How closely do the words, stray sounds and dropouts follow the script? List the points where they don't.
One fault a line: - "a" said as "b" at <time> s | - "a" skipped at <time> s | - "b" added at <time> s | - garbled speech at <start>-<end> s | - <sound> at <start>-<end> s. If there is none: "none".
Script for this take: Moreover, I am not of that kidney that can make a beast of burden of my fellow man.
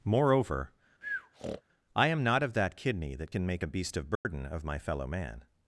- breath at 1.0-1.6 s
- dropout at 4.2-4.3 s